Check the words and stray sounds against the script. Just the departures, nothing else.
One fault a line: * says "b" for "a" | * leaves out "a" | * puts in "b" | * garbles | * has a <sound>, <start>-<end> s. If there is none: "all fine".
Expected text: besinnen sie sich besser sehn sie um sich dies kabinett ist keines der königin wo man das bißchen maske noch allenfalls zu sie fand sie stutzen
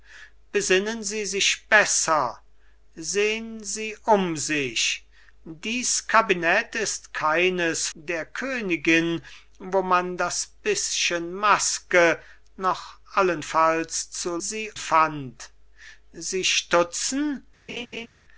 * has a laugh, 17.7-18.1 s